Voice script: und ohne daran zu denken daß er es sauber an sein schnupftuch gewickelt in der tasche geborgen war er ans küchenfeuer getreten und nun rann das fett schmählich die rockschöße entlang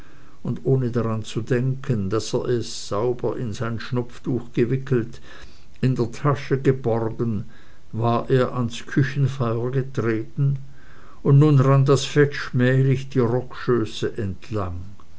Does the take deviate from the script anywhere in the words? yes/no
yes